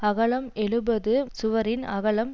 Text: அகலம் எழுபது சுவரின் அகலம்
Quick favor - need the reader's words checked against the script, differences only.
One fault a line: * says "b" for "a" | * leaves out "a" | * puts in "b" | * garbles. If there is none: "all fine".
all fine